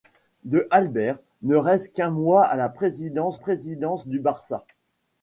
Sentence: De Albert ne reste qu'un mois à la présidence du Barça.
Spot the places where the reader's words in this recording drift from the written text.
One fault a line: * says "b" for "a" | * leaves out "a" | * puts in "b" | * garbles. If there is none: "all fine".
* puts in "présidence"